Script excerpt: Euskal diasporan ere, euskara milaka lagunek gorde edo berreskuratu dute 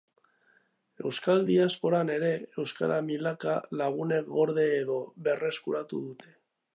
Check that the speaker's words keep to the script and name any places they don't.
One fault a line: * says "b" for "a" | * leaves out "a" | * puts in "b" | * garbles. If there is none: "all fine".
all fine